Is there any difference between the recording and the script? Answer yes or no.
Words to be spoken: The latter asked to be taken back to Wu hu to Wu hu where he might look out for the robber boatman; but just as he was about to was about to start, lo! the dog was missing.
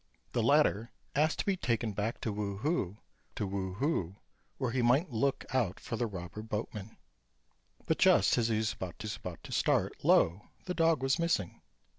no